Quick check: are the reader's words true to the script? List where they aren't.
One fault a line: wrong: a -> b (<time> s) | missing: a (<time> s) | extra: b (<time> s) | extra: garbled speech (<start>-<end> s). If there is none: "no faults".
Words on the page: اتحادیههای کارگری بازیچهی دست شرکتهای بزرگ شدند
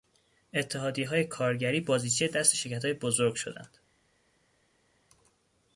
no faults